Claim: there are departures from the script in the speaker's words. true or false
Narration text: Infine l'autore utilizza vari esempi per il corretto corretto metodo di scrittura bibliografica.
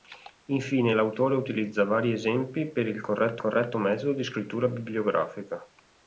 false